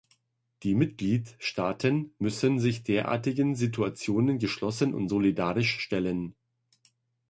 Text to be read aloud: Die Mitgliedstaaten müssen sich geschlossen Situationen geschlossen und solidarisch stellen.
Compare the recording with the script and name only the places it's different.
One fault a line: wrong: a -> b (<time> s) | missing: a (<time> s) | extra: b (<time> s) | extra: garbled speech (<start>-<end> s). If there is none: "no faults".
wrong: geschlossen -> derartigen (2.8 s)